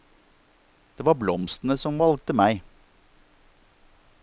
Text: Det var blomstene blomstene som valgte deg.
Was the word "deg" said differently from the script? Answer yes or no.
yes